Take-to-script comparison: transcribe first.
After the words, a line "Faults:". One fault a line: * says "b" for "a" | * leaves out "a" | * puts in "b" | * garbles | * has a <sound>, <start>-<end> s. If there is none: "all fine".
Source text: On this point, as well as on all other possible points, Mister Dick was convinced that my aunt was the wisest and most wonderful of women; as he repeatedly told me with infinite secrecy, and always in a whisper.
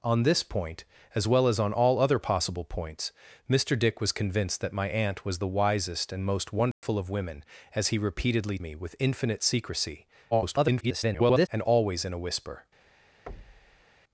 On this point, as well as on all other possible points, Mister Dick was convinced that my aunt was the wisest and most wonderful of women; as he repeatedly me with infinite secrecy, [garbled] and always in a whisper.
Faults:
* has a dropout, 6.7-6.8 s
* leaves out "told"
* garbles
* has a thud, 13.3-13.9 s